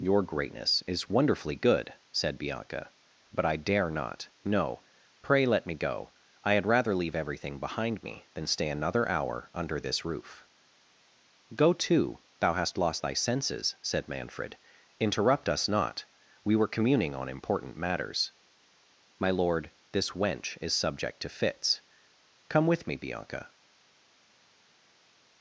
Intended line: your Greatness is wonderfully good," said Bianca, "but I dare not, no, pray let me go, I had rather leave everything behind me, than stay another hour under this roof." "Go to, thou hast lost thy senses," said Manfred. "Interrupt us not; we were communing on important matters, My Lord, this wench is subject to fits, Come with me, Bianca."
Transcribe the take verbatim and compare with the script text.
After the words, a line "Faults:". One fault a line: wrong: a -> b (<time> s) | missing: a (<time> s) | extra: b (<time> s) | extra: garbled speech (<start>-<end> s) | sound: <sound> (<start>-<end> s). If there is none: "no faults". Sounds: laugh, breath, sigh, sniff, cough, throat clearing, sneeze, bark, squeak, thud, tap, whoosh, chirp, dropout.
your Greatness is wonderfully good," said Bianca, "but I dare not, no, pray let me go, I had rather leave everything behind me, than stay another hour under this roof." "Go to, thou hast lost thy senses," said Manfred. "Interrupt us not; we were communing on important matters, My Lord, this wench is subject to fits, Come with me, Bianca."
Faults:
no faults